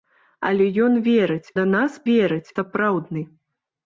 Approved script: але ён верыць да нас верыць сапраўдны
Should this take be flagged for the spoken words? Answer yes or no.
no